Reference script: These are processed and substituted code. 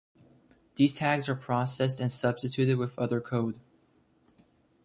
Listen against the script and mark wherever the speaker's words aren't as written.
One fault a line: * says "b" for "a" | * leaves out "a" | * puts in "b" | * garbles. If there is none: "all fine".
* puts in "tags"
* puts in "with other"